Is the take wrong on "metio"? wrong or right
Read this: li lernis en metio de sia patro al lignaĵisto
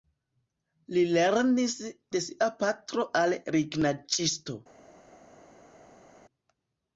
wrong